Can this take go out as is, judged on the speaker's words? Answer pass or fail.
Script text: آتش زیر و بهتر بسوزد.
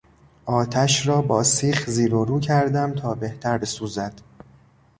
fail